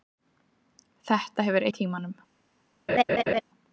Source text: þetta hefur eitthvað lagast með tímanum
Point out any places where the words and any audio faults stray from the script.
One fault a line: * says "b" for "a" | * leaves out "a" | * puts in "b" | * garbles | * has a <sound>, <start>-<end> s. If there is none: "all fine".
* leaves out "eitthvað lagast"
* has a laugh, 2.9-3.4 s